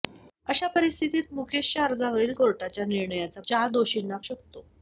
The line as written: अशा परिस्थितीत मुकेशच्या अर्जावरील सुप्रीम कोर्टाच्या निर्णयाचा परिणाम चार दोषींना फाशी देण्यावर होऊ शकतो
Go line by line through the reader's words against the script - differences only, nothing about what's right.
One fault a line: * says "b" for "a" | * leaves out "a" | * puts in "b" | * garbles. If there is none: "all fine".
* leaves out "सुप्रीम"
* leaves out "परिणाम"
* leaves out "फाशी देण्यावर होऊ"